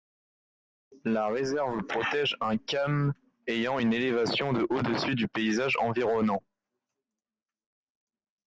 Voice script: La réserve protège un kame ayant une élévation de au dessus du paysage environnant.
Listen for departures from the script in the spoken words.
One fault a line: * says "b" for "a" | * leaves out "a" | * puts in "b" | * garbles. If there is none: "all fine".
all fine